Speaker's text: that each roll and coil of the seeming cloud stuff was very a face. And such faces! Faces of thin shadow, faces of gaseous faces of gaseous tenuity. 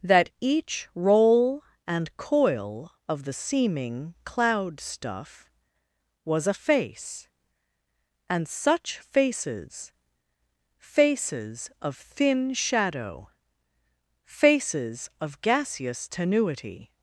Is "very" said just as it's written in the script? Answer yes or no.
no